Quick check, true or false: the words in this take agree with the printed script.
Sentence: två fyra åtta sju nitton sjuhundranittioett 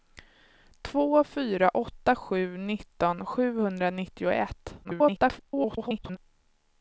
false